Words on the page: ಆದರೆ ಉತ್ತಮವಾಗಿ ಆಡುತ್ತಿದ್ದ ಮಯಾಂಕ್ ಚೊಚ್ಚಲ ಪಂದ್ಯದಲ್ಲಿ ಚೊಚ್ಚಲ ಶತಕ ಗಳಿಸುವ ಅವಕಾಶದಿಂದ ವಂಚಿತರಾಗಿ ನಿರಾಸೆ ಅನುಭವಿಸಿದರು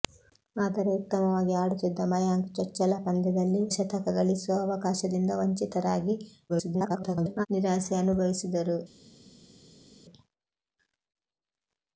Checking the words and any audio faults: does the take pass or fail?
fail